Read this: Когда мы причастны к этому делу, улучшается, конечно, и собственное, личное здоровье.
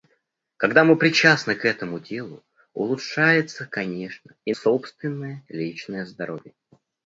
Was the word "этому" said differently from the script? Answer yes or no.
no